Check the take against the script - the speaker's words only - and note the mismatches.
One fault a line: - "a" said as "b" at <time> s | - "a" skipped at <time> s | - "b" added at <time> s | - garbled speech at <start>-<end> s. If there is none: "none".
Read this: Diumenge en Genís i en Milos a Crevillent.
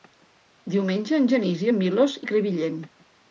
none